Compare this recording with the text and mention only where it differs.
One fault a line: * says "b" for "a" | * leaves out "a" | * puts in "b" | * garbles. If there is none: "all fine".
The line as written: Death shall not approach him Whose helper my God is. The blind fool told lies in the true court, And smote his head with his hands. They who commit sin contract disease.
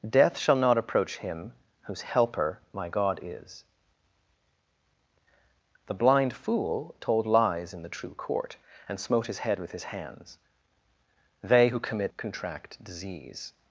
* leaves out "sin"